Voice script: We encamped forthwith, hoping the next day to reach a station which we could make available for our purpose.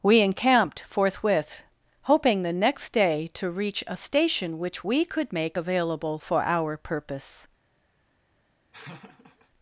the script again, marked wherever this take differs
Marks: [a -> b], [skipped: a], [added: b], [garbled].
We encamped forthwith, hoping the next day to reach a station which we could make available for our purpose.